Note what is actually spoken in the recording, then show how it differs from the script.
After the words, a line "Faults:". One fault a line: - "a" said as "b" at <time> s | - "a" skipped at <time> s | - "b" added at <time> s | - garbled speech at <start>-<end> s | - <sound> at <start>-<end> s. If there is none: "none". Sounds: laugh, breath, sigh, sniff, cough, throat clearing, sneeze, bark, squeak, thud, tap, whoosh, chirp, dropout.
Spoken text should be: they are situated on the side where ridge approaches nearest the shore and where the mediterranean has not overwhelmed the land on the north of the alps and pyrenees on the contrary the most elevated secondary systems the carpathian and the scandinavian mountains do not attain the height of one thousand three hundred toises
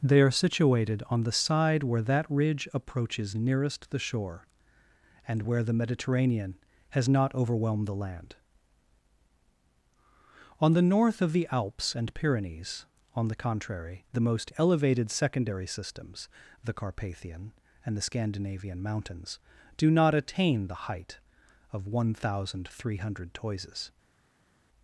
they are situated on the side where that ridge approaches nearest the shore and where the mediterranean has not overwhelmed the land on the north of the alps and pyrenees on the contrary the most elevated secondary systems the carpathian and the scandinavian mountains do not attain the height of one thousand three hundred toises
Faults:
- "that" added at 2.0 s